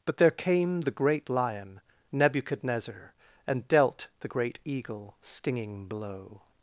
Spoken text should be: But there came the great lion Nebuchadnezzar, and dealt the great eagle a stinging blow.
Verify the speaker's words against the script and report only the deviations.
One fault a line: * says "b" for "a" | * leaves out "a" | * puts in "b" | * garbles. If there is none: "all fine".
* leaves out "a"